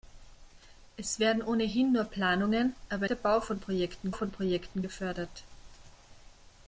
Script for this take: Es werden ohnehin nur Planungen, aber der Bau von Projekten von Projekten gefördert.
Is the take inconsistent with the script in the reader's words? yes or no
no